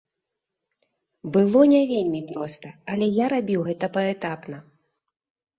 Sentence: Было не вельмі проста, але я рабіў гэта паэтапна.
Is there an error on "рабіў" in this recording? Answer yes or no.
no